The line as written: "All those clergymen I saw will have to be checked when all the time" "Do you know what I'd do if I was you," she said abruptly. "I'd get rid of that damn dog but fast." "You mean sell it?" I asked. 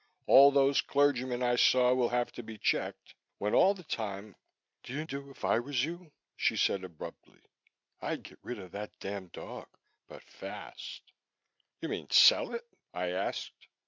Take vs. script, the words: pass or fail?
fail